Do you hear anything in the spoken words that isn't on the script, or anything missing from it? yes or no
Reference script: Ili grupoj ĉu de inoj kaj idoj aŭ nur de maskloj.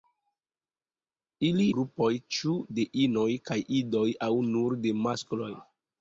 no